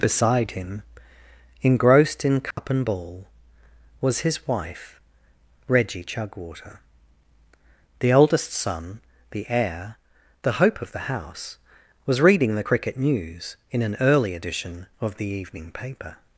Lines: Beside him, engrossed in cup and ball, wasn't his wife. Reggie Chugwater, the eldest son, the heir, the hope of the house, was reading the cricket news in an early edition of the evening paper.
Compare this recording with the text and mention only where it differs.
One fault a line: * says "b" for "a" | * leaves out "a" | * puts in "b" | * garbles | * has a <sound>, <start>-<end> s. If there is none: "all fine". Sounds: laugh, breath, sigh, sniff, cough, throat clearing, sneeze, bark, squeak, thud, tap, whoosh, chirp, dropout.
* has a dropout, 2.5-2.6 s
* says "was" for "wasn't"